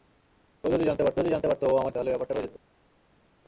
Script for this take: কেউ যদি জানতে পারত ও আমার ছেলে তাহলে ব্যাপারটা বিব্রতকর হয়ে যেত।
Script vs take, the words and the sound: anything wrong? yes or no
yes